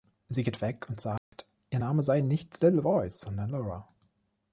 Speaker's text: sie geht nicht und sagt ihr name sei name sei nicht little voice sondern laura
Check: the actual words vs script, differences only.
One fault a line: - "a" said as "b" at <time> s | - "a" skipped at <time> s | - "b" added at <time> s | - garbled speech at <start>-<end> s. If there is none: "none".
- "nicht" said as "weg" at 0.6 s
- "name sei" skipped at 2.2 s